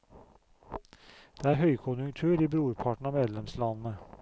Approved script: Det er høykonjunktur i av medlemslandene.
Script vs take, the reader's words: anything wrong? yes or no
yes